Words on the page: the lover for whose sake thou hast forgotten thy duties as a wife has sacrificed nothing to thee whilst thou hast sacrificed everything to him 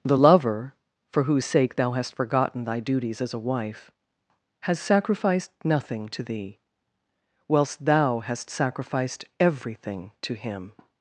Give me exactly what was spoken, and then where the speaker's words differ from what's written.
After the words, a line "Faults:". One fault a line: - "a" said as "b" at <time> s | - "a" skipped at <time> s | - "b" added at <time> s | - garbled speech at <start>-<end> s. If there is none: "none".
the lover for whose sake thou hast forgotten thy duties as a wife has sacrificed nothing to thee whilst thou hast sacrificed everything to him
Faults:
none